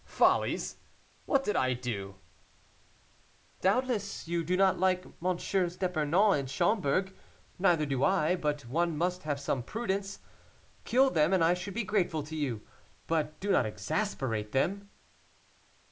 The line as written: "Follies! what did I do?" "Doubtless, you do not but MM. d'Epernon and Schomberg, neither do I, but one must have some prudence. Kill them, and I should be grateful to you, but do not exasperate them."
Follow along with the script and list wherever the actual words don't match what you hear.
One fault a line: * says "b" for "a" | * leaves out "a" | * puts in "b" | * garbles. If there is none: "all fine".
* says "like" for "but"